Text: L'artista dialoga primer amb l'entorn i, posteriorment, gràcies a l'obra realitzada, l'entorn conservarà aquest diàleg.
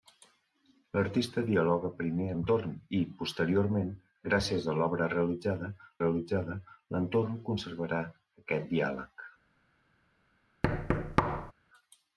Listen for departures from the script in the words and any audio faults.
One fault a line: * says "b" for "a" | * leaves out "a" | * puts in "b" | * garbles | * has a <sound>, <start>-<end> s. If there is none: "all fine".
* leaves out "amb"
* puts in "realitzada"
* has a thud, 10.6-11.5 s